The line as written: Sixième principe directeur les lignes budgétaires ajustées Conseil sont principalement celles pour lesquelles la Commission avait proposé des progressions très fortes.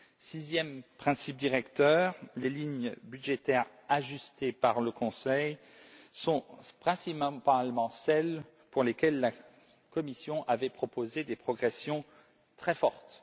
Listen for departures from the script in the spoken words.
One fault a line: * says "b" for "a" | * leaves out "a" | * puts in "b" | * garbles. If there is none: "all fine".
* puts in "par le"